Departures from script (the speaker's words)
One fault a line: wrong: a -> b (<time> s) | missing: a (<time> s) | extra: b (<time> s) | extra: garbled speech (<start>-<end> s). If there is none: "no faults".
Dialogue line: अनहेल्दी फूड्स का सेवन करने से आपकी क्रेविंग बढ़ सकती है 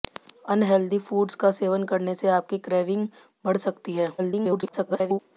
extra: garbled speech (4.2-5.2 s)